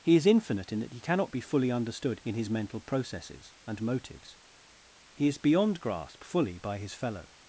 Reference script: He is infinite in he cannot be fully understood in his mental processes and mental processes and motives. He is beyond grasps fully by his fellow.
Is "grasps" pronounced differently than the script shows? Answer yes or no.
yes